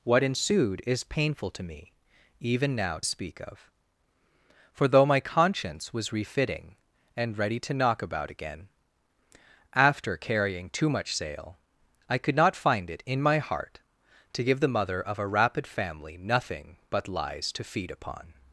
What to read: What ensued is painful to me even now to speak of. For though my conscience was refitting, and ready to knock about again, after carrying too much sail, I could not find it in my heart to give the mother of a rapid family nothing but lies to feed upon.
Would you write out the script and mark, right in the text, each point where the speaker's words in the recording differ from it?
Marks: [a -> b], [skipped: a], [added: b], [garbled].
What ensued is painful to me even now [skipped: to] speak of. For though my conscience was refitting, and ready to knock about again, after carrying too much sail, I could not find it in my heart to give the mother of a rapid family nothing but lies to feed upon.